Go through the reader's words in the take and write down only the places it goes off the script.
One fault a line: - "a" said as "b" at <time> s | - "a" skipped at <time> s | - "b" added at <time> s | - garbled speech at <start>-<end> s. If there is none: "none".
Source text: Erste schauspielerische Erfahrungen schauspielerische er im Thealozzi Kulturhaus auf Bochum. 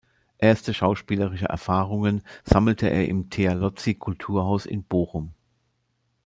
- "schauspielerische" said as "sammelte" at 2.4 s
- "auf" said as "in" at 4.6 s